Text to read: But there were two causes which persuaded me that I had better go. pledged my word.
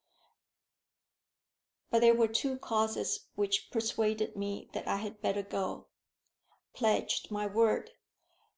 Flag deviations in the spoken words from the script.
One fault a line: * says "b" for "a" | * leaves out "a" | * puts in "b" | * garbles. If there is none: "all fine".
all fine